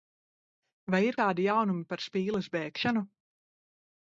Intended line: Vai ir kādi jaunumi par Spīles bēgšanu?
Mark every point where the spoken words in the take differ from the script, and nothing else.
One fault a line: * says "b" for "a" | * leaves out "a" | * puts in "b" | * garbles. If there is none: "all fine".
all fine